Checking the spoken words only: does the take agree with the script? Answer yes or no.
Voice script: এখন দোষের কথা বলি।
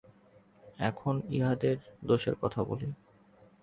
no